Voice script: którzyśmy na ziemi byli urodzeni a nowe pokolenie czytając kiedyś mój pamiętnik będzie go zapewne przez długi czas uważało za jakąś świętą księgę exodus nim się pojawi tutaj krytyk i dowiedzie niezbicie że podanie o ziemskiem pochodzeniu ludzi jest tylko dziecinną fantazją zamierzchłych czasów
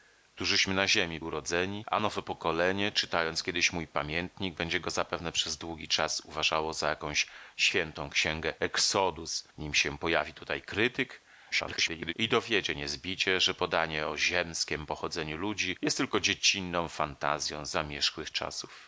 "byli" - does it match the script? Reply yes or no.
no